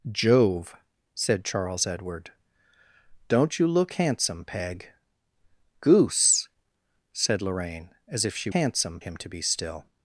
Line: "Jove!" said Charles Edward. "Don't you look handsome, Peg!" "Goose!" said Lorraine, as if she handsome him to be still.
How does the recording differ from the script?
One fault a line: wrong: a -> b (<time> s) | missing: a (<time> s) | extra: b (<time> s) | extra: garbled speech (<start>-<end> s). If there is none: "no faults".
no faults